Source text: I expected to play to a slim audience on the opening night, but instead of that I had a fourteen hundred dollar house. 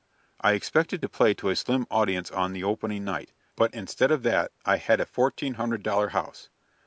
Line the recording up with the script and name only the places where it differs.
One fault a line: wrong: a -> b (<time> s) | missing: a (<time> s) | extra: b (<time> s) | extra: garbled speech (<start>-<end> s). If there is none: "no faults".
no faults